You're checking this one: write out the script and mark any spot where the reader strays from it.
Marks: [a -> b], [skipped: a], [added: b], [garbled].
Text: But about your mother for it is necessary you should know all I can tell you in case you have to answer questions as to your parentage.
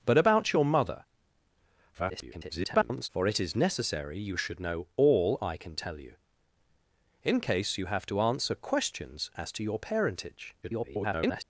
But about your mother [garbled] for it is necessary you should know all I can tell you in case you have to answer questions as to your parentage. [garbled]